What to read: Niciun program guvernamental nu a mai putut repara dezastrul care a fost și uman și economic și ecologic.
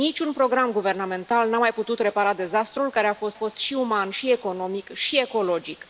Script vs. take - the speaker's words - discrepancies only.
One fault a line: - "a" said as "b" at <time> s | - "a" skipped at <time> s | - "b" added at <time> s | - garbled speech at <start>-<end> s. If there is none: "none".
- "fost" added at 3.3 s